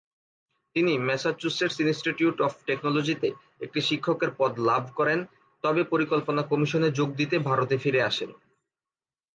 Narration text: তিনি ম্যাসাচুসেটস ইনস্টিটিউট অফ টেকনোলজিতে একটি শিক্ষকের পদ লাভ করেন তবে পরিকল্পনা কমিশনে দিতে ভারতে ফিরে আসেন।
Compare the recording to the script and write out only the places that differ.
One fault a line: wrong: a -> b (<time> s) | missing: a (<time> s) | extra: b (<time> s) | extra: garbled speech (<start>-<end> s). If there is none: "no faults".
extra: যোগ (6.9 s)